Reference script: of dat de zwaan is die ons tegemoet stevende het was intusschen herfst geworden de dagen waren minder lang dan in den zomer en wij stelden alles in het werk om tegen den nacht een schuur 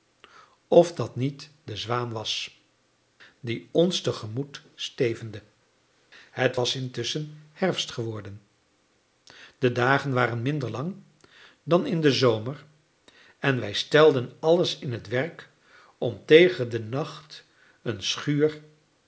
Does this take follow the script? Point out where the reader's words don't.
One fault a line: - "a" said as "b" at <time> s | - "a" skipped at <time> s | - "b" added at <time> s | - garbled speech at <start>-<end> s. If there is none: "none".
- "niet" added at 1.1 s
- "is" said as "was" at 2.1 s